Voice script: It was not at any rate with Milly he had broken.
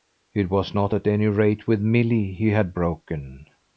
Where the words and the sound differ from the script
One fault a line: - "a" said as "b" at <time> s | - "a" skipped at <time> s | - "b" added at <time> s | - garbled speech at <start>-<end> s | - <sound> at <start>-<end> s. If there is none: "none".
none